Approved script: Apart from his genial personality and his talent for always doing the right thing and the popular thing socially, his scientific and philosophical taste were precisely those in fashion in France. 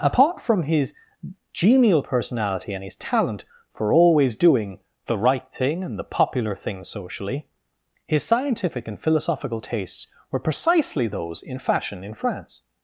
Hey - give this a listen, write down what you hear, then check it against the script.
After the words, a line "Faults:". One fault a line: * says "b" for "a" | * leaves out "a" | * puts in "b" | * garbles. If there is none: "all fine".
Apart from his genial personality and his talent for always doing the right thing and the popular thing socially, his scientific and philosophical tastes were precisely those in fashion in France.
Faults:
* says "tastes" for "taste"